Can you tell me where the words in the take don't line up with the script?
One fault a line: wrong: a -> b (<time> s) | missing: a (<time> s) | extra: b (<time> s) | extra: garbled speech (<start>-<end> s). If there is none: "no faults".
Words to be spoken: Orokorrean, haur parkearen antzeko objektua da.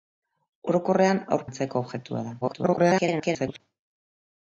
missing: parkearen (1.4 s)
extra: garbled speech (2.4-3.6 s)